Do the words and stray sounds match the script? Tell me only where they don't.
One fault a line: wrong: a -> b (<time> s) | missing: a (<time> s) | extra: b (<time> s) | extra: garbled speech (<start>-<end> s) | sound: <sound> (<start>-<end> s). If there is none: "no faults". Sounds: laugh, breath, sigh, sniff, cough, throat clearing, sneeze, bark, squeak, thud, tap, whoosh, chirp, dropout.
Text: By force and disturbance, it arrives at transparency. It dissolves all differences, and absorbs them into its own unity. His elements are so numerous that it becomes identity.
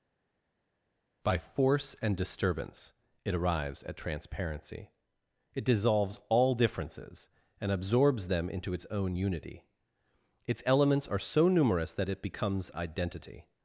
wrong: His -> Its (10.4 s)